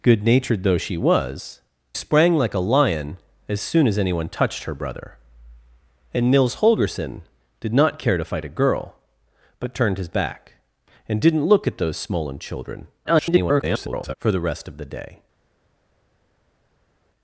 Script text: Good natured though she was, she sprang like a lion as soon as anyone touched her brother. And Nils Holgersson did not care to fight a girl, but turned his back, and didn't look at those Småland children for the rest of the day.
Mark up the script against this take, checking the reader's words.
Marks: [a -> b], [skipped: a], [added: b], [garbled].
Good natured though she was, [skipped: she] sprang like a lion as soon as anyone touched her brother. And Nils Holgersson did not care to fight a girl, but turned his back, and didn't look at those Småland children [garbled] for the rest of the day.